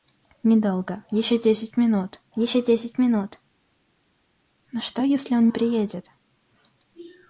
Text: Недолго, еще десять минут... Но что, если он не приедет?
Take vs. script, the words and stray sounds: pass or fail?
fail